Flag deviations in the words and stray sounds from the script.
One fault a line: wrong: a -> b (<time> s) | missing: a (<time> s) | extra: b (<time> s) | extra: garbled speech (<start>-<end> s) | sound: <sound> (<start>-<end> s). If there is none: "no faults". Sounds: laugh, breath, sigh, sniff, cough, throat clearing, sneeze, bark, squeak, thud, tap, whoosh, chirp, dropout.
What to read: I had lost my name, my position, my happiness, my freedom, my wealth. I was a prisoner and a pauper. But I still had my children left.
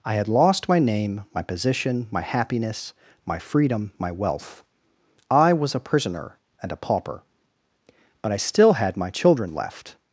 no faults